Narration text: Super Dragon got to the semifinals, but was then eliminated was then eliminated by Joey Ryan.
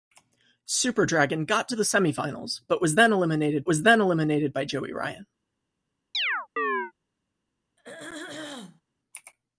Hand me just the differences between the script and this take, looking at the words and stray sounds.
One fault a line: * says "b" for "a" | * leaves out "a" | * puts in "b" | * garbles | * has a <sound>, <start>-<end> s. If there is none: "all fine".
* has a chirp, 6.1-6.9 s
* has a throat clearing, 7.8-8.8 s